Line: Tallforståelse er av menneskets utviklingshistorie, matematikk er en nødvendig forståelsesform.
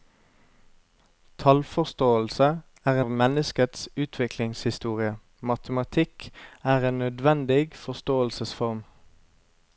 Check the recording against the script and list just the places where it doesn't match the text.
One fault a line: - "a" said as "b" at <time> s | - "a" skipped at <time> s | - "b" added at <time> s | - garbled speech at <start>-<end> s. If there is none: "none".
none